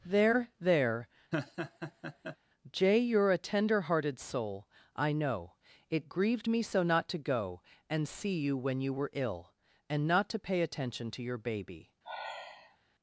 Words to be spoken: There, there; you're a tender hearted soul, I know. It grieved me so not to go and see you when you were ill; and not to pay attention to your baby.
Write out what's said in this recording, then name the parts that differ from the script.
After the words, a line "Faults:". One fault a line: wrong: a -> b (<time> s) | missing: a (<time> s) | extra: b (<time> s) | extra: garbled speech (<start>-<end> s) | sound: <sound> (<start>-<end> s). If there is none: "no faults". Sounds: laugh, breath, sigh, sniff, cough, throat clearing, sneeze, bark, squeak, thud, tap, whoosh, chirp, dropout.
There, there; jay you're a tender hearted soul, I know. It grieved me so not to go and see you when you were ill; and not to pay attention to your baby.
Faults:
sound: laugh (1.3-2.4 s)
extra: jay (2.7 s)
sound: sigh (12.0-12.8 s)